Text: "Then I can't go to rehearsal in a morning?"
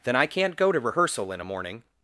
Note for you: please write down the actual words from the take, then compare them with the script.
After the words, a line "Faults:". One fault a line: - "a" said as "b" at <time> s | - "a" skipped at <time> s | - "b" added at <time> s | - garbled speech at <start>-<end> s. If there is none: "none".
"Then I can't go to rehearsal in a morning?"
Faults:
none